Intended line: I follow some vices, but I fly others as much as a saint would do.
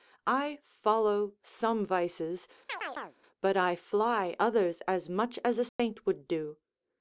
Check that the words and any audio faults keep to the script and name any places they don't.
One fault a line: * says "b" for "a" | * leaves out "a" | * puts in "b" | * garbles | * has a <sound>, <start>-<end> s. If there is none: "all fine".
* has a chirp, 2.7-3.2 s
* has a dropout, 5.7-5.8 s